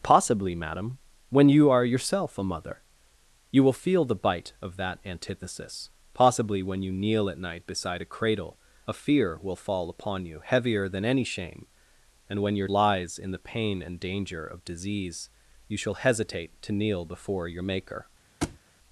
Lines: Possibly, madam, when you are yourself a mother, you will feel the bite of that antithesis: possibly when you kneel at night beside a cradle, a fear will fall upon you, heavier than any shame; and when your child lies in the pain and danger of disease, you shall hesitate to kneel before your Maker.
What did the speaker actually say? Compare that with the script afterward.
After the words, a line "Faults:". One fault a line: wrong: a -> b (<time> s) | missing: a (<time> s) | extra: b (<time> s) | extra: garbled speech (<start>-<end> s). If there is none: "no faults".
Possibly, madam, when you are yourself a mother, you will feel the bite of that antithesis: possibly when you kneel at night beside a cradle, a fear will fall upon you, heavier than any shame; and when your lies in the pain and danger of disease, you shall hesitate to kneel before your Maker.
Faults:
missing: child (12.7 s)